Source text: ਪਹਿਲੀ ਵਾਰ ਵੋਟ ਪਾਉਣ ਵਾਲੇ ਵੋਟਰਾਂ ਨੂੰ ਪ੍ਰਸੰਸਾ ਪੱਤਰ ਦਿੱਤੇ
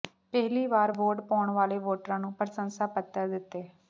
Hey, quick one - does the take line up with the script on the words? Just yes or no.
yes